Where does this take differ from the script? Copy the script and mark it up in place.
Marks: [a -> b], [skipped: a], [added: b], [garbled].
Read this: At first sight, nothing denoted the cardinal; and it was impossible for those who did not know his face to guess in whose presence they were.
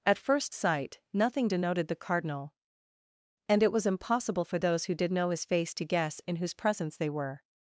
At first sight, nothing denoted the cardinal; and it was impossible for those who did [skipped: not] know his face to guess in whose presence they were.